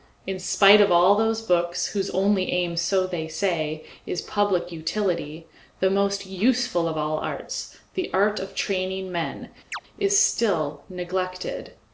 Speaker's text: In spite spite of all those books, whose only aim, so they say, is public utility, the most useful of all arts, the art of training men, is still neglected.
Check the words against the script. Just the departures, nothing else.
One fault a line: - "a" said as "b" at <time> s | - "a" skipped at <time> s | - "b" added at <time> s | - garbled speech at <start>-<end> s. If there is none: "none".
- "spite" skipped at 0.8 s